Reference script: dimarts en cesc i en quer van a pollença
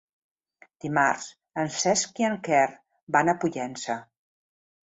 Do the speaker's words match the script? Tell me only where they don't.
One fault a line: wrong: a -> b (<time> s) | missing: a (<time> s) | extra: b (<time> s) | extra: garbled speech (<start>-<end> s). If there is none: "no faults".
no faults